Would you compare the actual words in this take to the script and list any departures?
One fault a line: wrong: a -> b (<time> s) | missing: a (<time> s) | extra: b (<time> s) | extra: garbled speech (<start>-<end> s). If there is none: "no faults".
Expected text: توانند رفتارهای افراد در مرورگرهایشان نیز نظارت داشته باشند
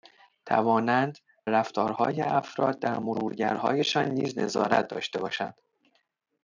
no faults